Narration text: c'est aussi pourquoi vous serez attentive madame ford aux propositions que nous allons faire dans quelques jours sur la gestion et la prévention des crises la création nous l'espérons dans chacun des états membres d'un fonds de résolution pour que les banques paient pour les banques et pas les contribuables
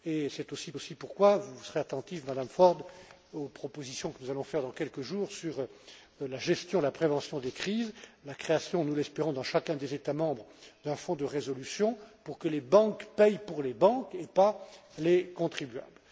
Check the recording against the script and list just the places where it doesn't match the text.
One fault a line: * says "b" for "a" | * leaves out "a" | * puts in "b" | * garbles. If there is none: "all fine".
* puts in "aussi"